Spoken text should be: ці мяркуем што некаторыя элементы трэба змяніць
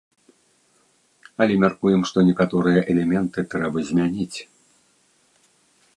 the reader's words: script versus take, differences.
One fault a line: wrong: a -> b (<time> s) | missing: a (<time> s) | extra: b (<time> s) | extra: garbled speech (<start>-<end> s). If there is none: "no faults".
wrong: ці -> але (1.4 s)